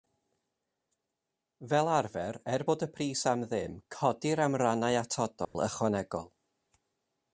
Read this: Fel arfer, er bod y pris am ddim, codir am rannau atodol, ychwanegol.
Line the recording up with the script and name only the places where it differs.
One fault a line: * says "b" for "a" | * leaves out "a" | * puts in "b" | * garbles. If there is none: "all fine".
all fine